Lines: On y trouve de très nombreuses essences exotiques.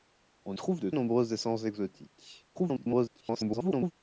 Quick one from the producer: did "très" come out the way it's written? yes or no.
no